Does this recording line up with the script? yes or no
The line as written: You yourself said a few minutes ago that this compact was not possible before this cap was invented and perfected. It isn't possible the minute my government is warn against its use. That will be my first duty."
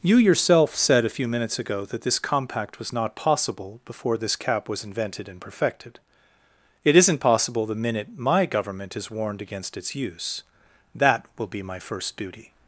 no